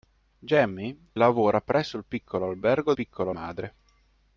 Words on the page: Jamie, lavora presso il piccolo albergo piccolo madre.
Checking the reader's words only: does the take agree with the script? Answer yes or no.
yes